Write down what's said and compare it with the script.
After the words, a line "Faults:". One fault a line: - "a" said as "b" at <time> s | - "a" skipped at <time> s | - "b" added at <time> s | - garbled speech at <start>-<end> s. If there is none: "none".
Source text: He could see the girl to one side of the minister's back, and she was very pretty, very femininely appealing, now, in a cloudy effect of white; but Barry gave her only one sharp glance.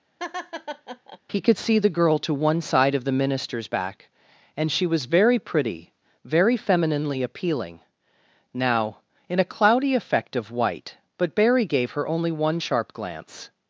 He could see the girl to one side of the minister's back, and she was very pretty, very femininely appealing, now, in a cloudy effect of white; but Barry gave her only one sharp glance.
Faults:
none